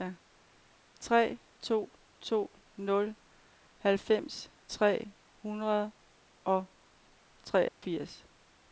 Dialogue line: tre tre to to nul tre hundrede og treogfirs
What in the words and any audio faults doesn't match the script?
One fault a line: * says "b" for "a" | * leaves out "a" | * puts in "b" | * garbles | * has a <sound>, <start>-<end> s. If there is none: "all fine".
* leaves out "tre"
* puts in "halvfems"
* has a dropout, 7.7-7.8 s